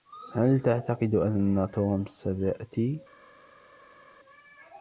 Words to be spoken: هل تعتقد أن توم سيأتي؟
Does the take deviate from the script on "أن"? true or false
false